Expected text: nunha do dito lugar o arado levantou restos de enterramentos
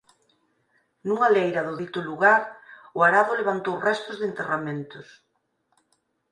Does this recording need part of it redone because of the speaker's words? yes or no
yes